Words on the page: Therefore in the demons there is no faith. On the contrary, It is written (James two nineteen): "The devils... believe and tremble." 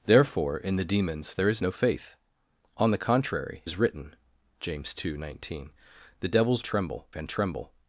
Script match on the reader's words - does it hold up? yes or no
no